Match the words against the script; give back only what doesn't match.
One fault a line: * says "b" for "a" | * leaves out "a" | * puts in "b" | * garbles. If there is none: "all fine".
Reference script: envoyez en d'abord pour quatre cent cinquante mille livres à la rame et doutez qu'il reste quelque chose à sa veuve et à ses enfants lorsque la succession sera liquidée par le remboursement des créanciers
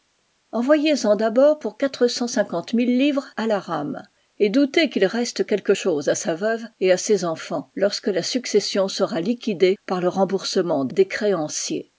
all fine